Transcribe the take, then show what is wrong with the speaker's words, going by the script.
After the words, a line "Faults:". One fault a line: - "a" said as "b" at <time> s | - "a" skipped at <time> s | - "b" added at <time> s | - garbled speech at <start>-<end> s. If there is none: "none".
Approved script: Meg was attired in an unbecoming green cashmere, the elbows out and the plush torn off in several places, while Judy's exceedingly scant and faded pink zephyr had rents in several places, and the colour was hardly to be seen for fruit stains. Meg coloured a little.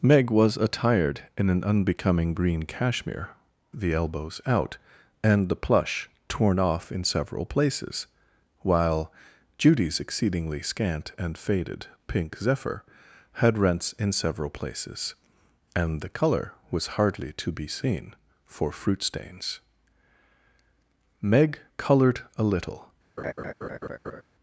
Meg was attired in an unbecoming green cashmere, the elbows out and the plush torn off in several places, while Judy's exceedingly scant and faded pink zephyr had rents in several places, and the colour was hardly to be seen for fruit stains. Meg coloured a little.
Faults:
none